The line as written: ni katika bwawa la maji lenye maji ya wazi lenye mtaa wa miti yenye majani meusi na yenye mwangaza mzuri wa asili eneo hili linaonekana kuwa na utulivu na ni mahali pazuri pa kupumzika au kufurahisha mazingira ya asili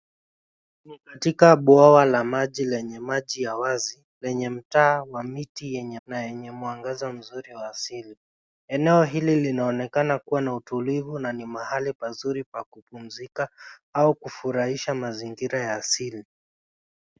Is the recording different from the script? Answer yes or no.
yes